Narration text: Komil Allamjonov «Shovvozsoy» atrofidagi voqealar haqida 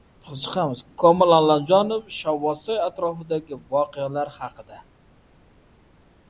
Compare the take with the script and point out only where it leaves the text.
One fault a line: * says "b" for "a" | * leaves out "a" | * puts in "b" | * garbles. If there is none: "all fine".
all fine